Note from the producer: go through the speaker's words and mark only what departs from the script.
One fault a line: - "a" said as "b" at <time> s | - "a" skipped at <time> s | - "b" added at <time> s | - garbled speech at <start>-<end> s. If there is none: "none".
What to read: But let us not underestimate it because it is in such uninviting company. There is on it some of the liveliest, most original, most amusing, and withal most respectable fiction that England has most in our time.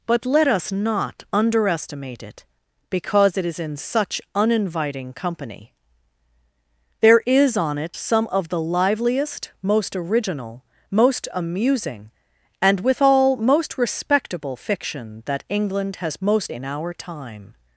none